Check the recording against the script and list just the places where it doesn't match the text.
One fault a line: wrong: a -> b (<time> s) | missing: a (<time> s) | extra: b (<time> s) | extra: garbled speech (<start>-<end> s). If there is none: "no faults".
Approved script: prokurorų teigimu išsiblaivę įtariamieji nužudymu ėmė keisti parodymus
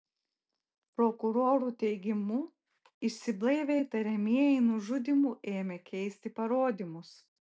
no faults